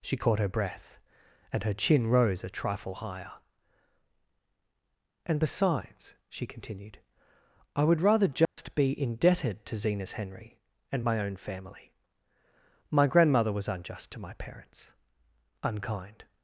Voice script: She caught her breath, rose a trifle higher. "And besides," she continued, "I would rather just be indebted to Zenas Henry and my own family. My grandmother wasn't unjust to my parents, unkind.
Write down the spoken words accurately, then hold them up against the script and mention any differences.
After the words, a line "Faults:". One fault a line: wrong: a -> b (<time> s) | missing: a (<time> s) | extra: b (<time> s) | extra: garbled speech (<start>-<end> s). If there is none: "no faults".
She caught her breath, and her chin rose a trifle higher. "And besides," she continued, "I would rather just be indebted to Zenas Henry and my own family. My grandmother was unjust to my parents, unkind.
Faults:
extra: and her chin (1.5 s)
wrong: wasn't -> was (13.5 s)